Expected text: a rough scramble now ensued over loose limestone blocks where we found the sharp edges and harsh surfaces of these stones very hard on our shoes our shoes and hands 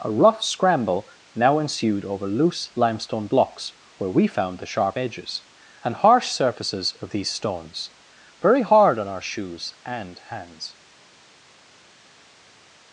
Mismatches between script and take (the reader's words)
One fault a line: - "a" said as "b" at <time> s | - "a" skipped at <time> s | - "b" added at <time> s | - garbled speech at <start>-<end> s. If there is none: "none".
- "our shoes" skipped at 9.7 s